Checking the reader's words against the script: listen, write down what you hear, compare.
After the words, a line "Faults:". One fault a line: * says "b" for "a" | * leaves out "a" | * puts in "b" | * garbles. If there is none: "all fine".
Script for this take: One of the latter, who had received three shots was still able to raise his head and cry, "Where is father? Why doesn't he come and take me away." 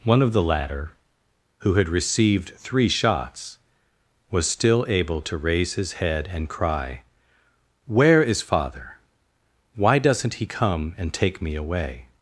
One of the latter, who had received three shots was still able to raise his head and cry, "Where is father? Why doesn't he come and take me away."
Faults:
all fine